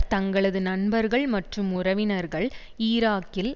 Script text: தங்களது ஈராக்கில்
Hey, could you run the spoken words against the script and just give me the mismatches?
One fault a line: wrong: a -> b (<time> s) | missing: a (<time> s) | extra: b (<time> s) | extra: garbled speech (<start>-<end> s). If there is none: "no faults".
extra: நண்பர்கள் மற்றும் உறவினர்கள் (0.6 s)